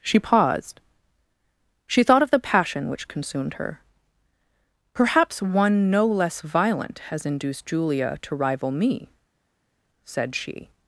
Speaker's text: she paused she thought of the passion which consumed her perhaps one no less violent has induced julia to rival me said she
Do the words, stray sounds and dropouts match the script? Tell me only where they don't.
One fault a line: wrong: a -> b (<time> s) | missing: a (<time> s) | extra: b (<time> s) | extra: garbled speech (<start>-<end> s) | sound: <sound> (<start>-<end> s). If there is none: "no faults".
no faults